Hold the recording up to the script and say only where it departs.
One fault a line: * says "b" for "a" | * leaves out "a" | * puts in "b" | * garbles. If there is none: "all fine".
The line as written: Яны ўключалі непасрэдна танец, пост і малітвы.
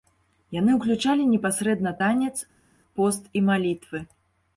all fine